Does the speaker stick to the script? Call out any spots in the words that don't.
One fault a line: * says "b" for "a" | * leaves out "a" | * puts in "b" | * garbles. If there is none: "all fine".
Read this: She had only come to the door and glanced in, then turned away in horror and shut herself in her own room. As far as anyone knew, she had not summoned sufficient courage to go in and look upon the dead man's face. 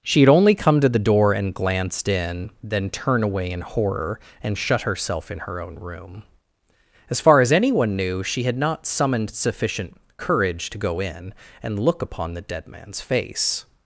* says "turn" for "turned"